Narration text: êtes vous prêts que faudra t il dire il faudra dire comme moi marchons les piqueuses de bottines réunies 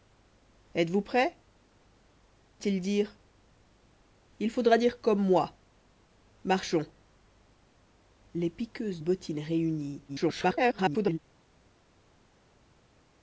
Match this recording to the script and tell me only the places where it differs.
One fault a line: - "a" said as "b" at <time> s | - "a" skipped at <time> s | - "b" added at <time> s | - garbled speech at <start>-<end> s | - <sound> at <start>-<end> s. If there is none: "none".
- "que faudra" skipped at 1.4 s
- "de" skipped at 9.0 s
- garbled speech at 10.1-11.2 s